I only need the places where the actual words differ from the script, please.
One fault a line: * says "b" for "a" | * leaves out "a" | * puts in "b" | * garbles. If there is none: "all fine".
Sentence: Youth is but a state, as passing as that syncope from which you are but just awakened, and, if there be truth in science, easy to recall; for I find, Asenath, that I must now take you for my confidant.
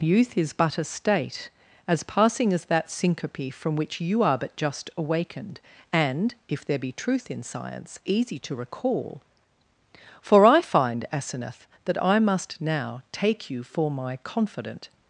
all fine